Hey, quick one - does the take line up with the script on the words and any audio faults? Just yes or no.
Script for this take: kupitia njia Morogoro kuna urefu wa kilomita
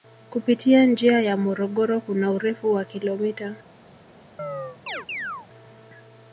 no